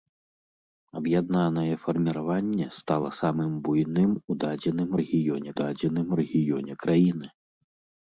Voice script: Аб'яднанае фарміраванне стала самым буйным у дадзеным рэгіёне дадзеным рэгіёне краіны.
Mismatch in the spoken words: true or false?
false